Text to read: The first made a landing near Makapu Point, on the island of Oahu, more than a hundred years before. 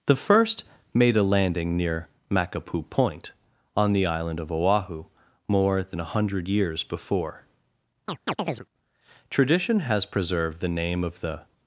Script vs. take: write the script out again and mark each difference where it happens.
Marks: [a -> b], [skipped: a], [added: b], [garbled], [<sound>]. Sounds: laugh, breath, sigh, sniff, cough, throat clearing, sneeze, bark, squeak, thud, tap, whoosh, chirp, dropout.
The first made a landing near Makapu Point, on the island of Oahu, more than a hundred years before. [chirp] [added: Tradition has preserved the name of the]